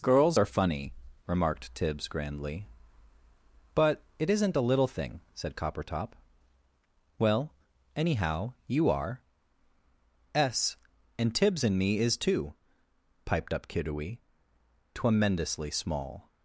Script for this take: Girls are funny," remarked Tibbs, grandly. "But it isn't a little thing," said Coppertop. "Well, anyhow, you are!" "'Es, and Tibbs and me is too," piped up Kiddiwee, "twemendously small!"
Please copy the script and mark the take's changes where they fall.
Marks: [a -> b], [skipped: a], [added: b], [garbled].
Girls are funny," remarked Tibbs, grandly. "But it isn't a little thing," said Coppertop. "Well, anyhow, you are!" "'Es, and Tibbs and me is too," piped up Kiddiwee, "twemendously small!"